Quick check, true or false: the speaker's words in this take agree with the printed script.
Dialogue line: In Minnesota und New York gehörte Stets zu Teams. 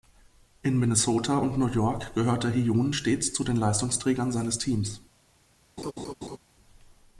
false